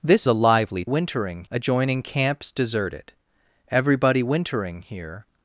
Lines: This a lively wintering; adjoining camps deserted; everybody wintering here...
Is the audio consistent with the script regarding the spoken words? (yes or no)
yes